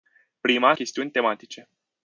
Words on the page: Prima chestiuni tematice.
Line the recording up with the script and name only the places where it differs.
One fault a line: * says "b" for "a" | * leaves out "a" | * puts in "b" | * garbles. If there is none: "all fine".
all fine